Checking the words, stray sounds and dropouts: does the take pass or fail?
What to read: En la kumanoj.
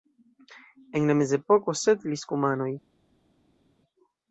fail